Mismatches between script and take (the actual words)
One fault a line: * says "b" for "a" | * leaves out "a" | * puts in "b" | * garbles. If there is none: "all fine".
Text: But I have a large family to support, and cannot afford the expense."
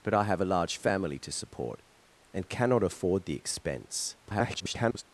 * garbles